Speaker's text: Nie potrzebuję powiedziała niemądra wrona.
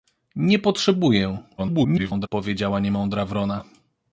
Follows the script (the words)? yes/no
no